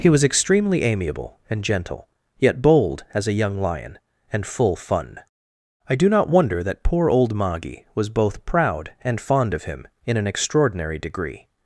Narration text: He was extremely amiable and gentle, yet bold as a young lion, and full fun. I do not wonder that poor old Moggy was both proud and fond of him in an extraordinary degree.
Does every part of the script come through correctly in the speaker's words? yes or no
yes